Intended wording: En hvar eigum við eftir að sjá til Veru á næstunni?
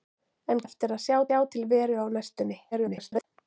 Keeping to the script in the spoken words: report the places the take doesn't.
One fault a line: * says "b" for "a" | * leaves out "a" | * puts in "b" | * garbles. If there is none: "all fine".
* leaves out "hvar eigum við"
* puts in "sjá"
* garbles